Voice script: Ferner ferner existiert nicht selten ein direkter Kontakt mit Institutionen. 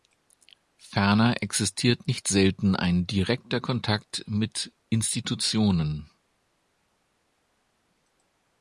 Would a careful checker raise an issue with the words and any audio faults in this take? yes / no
yes